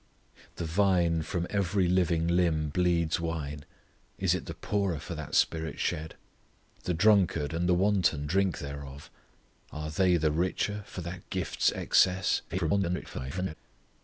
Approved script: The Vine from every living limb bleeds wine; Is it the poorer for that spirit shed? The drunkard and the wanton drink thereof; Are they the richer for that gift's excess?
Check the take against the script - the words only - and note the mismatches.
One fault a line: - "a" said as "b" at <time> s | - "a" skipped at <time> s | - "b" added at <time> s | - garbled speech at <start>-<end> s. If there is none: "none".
- garbled speech at 12.5-13.5 s